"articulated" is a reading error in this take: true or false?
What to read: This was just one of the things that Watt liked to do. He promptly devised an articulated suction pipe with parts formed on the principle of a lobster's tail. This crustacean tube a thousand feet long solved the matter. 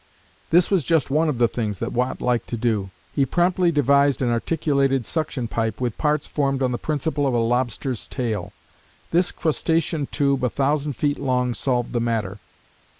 false